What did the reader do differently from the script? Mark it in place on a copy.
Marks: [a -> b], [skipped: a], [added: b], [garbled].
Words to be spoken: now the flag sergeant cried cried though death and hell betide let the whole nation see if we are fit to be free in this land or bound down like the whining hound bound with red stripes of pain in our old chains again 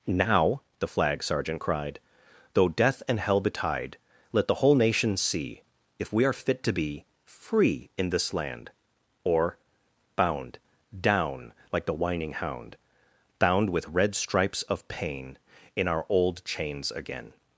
now the flag sergeant cried [skipped: cried] though death and hell betide let the whole nation see if we are fit to be free in this land or bound down like the whining hound bound with red stripes of pain in our old chains again